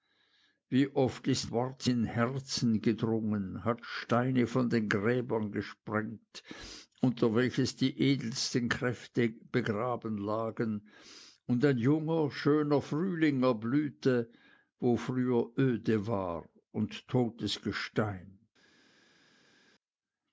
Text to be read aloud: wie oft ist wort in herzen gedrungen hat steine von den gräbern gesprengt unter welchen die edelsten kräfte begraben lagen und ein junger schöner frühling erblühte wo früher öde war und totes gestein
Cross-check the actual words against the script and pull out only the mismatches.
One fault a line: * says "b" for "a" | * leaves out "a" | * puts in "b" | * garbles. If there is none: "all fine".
all fine